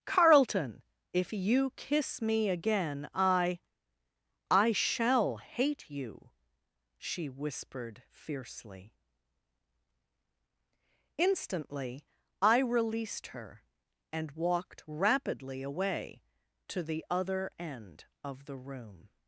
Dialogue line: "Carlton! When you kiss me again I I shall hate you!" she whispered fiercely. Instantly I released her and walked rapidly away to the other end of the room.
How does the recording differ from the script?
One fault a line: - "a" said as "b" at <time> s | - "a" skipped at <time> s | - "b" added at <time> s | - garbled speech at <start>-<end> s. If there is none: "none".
- "When" said as "If" at 1.1 s